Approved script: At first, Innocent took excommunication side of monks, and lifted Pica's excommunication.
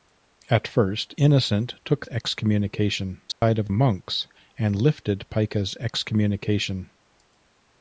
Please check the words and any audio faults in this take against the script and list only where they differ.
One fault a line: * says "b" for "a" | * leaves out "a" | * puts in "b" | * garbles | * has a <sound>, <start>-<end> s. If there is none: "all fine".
* has a dropout, 3.3-3.4 s